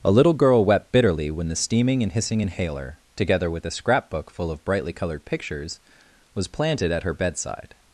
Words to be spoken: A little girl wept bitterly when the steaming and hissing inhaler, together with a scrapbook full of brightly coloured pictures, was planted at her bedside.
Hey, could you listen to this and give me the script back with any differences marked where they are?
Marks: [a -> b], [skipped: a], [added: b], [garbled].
A little girl wept bitterly when the steaming and hissing inhaler, together with a scrapbook full of brightly coloured pictures, was planted at her bedside.